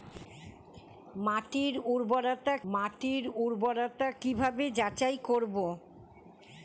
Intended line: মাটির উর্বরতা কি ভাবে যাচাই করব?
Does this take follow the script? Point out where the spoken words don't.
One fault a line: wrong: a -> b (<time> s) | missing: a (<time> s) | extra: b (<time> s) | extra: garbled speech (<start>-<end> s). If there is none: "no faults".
extra: মাটির উর্বরতা (2.7 s)